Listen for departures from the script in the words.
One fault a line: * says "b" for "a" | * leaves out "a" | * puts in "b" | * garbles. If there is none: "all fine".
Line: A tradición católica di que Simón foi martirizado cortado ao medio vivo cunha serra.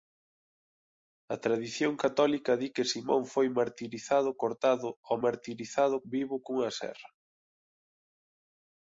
* says "martirizado" for "medio"